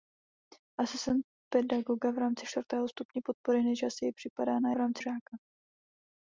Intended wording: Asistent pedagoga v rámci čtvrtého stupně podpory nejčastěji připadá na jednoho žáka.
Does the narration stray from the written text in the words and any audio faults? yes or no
yes